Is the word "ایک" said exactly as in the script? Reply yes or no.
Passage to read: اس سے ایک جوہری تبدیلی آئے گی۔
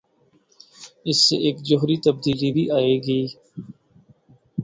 yes